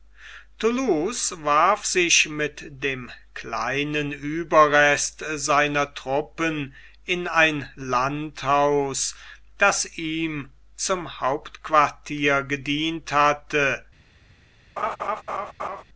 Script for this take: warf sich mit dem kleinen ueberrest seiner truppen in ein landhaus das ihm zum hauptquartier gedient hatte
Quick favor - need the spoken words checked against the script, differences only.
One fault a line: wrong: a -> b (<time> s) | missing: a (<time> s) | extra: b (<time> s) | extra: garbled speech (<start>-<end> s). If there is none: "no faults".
no faults